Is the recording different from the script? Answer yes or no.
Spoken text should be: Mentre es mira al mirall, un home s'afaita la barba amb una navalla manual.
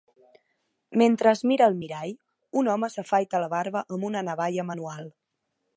no